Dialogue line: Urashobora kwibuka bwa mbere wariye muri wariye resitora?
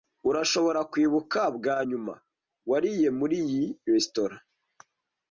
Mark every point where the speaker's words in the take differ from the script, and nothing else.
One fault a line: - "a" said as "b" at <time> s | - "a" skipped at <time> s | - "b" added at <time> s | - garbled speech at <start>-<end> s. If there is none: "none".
- "mbere" said as "nyuma" at 1.9 s
- "wariye" said as "iyi" at 3.4 s